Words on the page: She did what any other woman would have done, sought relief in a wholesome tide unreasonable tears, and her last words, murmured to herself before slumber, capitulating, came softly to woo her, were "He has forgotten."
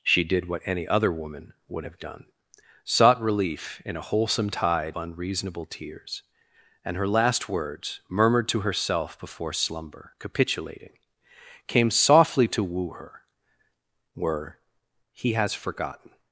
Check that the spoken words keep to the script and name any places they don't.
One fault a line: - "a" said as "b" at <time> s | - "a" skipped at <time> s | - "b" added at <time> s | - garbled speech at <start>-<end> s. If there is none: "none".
none